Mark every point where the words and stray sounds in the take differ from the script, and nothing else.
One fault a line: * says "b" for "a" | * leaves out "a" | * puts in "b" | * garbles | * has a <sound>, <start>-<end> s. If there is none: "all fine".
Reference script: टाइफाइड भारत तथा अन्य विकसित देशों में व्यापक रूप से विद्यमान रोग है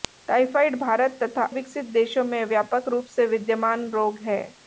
* leaves out "अन्य"